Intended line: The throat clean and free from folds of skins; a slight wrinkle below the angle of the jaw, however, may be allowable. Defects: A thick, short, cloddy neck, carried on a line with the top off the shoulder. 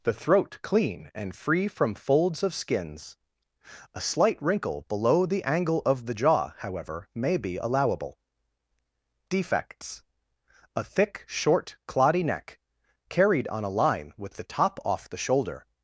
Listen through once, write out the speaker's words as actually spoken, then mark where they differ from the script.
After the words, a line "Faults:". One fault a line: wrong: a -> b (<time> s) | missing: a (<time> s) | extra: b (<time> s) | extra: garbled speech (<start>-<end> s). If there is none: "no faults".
The throat clean and free from folds of skins; a slight wrinkle below the angle of the jaw, however, may be allowable. Defects: A thick, short, cloddy neck, carried on a line with the top off the shoulder.
Faults:
no faults